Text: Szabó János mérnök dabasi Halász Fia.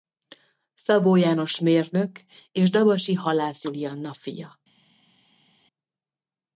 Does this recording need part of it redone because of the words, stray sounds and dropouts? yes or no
yes